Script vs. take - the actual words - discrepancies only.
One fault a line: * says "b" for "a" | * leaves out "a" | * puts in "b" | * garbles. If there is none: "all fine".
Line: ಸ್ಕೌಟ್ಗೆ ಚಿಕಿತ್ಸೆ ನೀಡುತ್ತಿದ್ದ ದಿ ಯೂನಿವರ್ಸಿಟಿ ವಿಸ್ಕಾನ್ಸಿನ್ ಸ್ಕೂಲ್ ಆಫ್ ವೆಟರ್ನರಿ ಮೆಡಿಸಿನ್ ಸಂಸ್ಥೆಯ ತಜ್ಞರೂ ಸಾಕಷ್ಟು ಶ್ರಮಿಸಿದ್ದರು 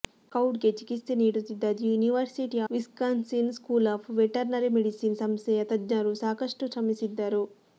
all fine